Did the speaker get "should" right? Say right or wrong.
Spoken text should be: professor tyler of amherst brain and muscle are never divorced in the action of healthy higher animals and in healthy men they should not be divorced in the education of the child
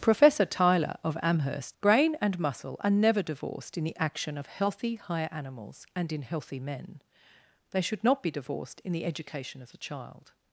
right